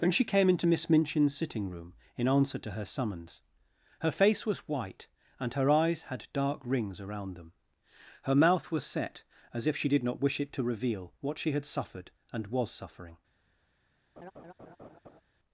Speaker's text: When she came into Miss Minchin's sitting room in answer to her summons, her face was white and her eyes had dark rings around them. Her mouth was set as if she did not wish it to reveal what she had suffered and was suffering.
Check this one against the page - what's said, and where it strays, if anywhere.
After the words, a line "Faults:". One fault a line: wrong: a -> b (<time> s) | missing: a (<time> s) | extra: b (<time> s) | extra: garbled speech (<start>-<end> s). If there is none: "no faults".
Then she came into Miss Minchin's sitting room in answer to her summons, her face was white and her eyes had dark rings around them. Her mouth was set as if she did not wish it to reveal what she had suffered and was suffering.
Faults:
wrong: When -> Then (0.0 s)